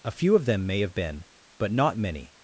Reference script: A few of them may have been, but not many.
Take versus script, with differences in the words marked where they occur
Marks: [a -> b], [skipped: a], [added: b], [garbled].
A few of them may have been, but not many.